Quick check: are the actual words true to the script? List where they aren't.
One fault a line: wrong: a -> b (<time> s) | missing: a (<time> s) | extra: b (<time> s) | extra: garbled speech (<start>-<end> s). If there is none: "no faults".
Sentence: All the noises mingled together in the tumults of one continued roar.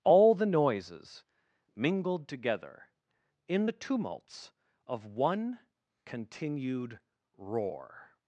no faults